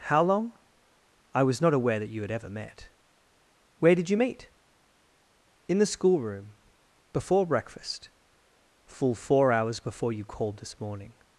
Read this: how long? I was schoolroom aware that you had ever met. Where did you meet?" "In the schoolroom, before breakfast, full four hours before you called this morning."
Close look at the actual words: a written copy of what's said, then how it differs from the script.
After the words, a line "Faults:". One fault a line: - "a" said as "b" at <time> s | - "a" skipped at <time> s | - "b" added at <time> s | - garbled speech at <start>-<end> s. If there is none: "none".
how long? I was not aware that you had ever met. Where did you meet?" "In the schoolroom, before breakfast, full four hours before you called this morning."
Faults:
- "schoolroom" said as "not" at 1.6 s